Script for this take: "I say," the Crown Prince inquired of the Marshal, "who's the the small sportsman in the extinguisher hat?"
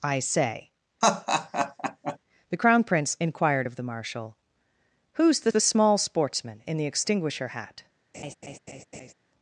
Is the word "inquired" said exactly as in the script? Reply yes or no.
yes